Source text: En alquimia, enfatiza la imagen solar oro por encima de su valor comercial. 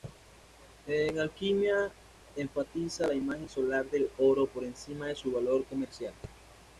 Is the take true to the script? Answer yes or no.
no